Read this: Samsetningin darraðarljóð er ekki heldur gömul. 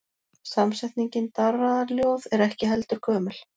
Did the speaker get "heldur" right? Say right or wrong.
right